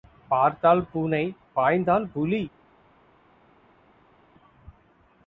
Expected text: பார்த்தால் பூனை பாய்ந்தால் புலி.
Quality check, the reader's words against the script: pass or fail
pass